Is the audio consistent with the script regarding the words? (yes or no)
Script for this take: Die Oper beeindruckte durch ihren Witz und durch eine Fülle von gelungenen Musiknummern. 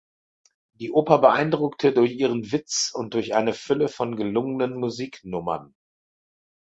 yes